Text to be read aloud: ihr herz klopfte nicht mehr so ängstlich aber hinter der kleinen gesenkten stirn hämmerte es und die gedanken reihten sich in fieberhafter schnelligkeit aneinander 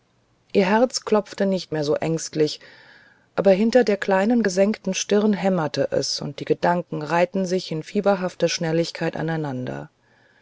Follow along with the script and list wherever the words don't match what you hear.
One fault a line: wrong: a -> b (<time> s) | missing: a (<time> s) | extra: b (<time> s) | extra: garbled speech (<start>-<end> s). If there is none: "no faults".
no faults